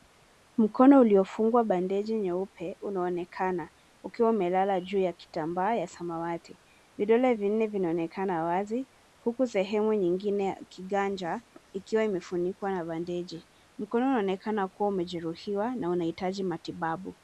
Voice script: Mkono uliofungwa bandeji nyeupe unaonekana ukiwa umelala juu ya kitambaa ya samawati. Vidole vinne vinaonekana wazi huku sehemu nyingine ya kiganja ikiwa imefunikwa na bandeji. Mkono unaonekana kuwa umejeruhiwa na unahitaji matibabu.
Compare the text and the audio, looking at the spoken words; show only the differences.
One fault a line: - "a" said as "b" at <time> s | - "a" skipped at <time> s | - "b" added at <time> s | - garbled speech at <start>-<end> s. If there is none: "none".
none